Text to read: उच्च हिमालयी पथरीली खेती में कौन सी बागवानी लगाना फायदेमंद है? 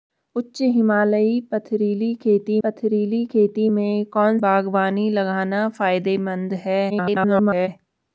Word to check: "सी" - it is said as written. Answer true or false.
false